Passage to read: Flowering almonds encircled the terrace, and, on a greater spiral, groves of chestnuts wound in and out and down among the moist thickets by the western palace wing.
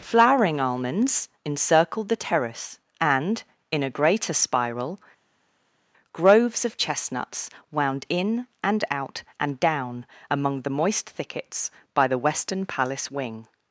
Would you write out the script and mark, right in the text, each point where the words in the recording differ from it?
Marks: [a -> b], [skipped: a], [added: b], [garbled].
Flowering almonds encircled the terrace, and, [on -> in] a greater spiral, groves of chestnuts wound in and out and down among the moist thickets by the western palace wing.